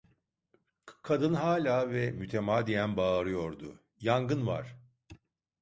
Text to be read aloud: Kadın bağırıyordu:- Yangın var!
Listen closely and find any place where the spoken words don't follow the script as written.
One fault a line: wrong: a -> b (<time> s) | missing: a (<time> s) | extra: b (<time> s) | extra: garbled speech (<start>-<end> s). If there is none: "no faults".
extra: hâlâ ve mütemadiyen (1.3 s)